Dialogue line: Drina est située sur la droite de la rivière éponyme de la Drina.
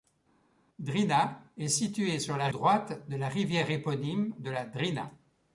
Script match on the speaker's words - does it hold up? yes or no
yes